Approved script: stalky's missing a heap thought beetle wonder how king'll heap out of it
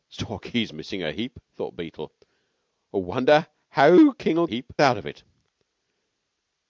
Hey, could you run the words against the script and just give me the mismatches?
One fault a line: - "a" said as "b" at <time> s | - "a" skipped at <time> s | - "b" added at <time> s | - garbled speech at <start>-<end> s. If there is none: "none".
none